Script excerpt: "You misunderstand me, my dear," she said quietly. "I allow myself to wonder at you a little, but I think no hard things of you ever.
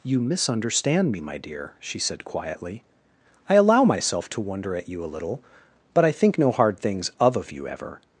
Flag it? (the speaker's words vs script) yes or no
yes